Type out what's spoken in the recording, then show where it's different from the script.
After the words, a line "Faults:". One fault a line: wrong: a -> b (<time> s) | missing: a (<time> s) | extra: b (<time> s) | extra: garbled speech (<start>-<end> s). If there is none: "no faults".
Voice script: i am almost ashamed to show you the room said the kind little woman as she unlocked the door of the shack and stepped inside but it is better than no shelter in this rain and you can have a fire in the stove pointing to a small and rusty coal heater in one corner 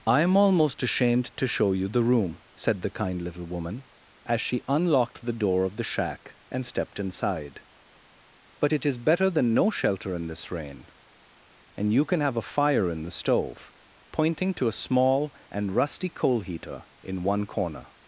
i am almost ashamed to show you the room said the kind little woman as she unlocked the door of the shack and stepped inside but it is better than no shelter in this rain and you can have a fire in the stove pointing to a small and rusty coal heater in one corner
Faults:
no faults